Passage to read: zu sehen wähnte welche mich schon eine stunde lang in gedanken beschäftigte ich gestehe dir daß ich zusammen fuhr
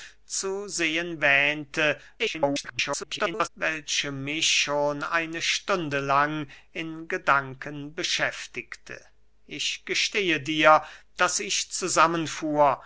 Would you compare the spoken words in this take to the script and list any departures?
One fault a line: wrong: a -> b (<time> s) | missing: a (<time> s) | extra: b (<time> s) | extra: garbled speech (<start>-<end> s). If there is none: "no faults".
extra: garbled speech (2.2-3.5 s)